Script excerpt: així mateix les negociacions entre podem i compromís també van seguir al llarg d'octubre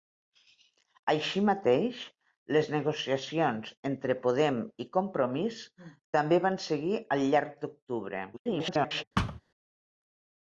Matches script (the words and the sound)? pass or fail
fail